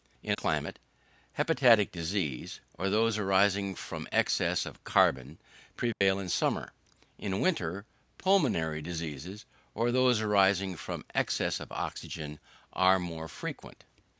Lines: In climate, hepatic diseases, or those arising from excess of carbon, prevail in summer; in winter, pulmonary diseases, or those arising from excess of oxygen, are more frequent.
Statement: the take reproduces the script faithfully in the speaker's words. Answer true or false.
true